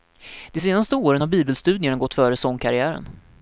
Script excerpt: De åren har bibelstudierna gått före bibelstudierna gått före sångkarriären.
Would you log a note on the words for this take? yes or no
yes